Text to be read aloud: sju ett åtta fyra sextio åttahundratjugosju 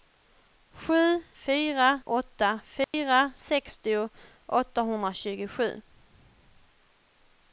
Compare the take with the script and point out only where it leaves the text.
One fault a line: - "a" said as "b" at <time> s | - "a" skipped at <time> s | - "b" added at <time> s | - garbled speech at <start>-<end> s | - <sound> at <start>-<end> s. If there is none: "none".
- "ett" said as "fyra" at 1.3 s
- dropout at 2.8-2.9 s